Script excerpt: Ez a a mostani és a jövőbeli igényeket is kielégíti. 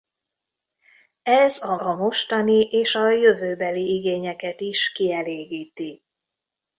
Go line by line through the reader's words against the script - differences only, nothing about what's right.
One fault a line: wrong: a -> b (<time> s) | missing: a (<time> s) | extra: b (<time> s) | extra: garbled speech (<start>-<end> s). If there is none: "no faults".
no faults